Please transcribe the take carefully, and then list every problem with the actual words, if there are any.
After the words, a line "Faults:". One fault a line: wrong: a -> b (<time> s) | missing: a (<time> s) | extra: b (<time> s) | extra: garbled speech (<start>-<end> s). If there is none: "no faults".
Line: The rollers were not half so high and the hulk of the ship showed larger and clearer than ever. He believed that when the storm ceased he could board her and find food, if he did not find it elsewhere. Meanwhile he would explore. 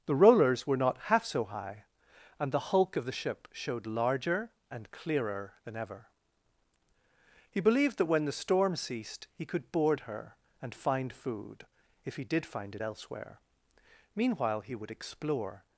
The rollers were not half so high and the hulk of the ship showed larger and clearer than ever. He believed that when the storm ceased he could board her and find food, if he did find it elsewhere. Meanwhile he would explore.
Faults:
missing: not (12.5 s)